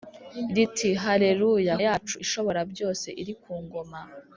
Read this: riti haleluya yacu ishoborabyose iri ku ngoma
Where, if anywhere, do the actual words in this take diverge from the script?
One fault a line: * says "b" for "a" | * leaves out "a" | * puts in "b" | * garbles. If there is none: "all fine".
all fine